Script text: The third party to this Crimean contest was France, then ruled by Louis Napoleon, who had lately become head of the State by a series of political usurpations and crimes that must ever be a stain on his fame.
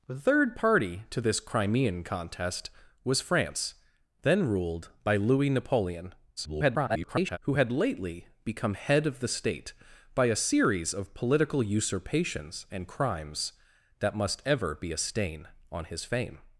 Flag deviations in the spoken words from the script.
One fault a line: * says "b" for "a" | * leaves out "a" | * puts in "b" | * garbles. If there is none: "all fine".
* garbles